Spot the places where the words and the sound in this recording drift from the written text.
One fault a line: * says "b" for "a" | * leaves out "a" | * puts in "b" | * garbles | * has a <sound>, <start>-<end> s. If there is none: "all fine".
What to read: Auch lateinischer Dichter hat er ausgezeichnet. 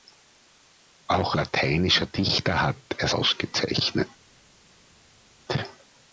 all fine